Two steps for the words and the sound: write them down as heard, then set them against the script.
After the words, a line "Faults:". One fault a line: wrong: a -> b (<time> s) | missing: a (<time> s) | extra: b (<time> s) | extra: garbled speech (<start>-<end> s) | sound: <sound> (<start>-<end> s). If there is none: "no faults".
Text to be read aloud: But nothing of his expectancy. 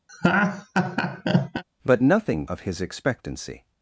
But nothing of his expectancy.
Faults:
sound: laugh (0.1-1.6 s)